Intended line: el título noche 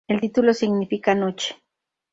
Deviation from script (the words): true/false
true